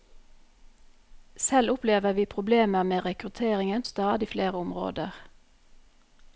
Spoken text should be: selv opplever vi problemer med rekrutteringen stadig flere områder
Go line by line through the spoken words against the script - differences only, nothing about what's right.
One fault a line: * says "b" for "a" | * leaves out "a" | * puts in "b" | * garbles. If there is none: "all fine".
all fine